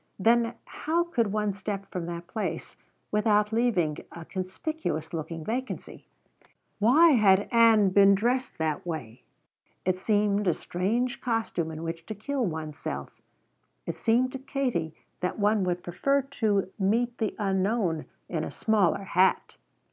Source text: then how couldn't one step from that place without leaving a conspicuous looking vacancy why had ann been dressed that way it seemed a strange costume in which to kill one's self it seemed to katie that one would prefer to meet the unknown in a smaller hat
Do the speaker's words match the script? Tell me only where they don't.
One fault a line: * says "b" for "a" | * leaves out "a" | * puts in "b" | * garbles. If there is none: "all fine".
* says "could" for "couldn't"